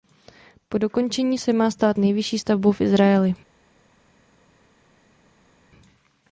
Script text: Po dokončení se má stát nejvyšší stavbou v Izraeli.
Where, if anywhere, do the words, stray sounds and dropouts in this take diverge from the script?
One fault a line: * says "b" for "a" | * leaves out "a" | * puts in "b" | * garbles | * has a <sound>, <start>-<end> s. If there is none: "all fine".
all fine